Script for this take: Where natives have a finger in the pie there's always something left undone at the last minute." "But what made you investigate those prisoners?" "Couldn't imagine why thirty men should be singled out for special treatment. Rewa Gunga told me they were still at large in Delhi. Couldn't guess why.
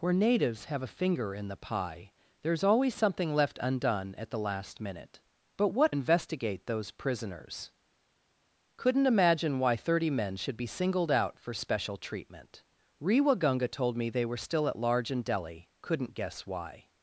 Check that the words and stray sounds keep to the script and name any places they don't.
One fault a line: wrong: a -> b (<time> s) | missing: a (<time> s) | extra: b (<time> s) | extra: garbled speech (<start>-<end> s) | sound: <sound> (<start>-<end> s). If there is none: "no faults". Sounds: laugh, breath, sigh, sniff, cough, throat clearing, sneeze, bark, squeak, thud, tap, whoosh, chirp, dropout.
missing: made you (6.0 s)